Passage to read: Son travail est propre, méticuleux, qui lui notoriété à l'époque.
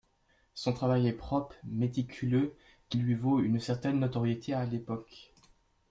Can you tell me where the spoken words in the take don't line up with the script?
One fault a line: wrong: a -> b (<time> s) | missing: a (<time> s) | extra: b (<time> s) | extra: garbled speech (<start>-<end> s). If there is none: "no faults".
extra: vaut une certaine (3.1 s)